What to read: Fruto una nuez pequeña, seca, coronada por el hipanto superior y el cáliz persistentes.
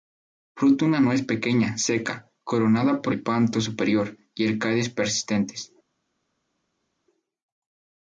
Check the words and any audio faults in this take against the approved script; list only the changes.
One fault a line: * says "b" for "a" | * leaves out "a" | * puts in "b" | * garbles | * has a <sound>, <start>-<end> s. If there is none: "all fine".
* leaves out "el"